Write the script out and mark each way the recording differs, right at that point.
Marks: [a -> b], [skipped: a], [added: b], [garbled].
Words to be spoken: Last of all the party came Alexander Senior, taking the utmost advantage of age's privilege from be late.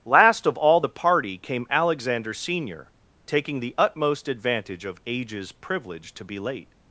Last of all the party came Alexander Senior, taking the utmost advantage of age's privilege [from -> to] be late.